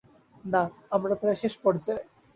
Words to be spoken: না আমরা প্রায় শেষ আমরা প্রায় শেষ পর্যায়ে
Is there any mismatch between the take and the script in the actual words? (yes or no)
yes